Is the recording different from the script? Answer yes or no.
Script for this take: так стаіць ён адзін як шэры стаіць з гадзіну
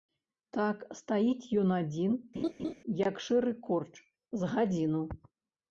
yes